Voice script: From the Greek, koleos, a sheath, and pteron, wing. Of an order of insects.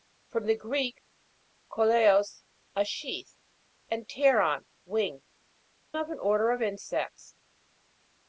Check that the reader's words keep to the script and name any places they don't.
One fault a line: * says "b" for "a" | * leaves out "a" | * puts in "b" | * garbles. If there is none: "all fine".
all fine